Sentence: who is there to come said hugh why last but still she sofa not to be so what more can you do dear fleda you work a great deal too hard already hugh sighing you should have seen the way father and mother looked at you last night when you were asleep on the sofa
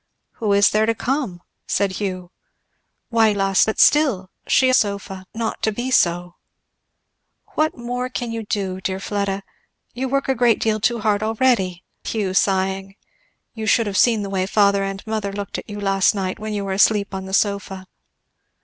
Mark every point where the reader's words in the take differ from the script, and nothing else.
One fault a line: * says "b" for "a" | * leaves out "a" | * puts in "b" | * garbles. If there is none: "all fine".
all fine